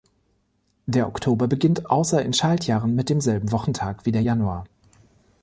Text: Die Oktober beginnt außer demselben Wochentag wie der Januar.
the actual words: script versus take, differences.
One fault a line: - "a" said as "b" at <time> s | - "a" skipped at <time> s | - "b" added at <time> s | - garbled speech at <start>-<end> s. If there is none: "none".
- "Die" said as "Der" at 0.9 s
- "in Schaltjahren mit" added at 2.2 s